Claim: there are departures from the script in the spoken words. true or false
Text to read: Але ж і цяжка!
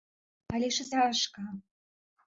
false